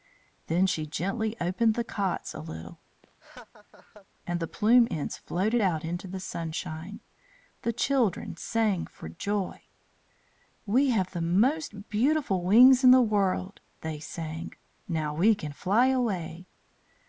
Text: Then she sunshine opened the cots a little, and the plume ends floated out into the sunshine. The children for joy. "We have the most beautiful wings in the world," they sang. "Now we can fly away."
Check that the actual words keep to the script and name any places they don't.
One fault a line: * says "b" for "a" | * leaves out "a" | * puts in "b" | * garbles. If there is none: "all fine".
* says "gently" for "sunshine"
* puts in "sang"